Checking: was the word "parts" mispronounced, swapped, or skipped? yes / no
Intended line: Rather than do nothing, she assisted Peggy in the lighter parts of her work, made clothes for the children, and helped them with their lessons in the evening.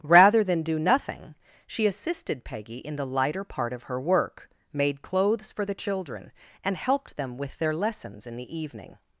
yes